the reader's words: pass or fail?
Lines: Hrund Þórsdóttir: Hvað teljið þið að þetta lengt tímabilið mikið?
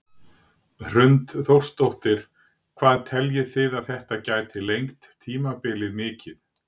fail